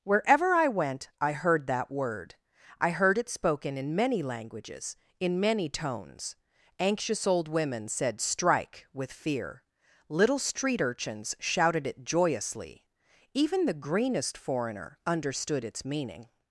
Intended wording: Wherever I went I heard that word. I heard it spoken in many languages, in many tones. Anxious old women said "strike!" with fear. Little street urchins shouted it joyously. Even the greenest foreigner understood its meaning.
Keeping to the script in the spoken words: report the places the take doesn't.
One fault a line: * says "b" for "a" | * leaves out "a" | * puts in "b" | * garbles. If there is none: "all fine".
all fine